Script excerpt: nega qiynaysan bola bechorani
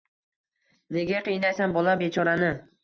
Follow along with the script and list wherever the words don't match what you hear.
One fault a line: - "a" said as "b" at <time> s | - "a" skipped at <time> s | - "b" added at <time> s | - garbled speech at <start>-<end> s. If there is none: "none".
none